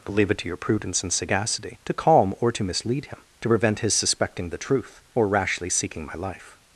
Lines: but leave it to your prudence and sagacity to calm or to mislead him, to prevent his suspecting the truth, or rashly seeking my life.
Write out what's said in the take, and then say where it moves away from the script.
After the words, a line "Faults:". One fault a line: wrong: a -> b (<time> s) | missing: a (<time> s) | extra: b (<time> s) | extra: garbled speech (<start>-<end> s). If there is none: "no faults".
but leave it to your prudence and sagacity to calm or to mislead him, to prevent his suspecting the truth, or rashly seeking my life.
Faults:
no faults